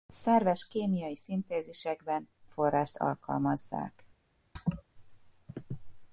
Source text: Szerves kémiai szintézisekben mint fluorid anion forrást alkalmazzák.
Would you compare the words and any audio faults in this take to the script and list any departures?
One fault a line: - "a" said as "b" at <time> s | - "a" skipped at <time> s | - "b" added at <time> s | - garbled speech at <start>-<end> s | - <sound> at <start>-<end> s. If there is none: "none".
- "mint fluorid anion" skipped at 2.3 s
- laugh at 4.6-4.8 s